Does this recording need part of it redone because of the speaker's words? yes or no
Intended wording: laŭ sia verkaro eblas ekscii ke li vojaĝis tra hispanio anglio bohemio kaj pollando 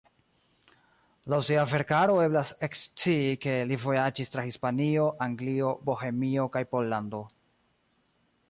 no